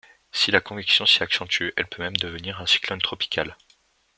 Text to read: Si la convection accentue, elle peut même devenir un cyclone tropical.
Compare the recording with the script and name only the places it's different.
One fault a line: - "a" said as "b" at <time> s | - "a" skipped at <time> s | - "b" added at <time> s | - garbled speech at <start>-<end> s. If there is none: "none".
- "s'y" added at 1.1 s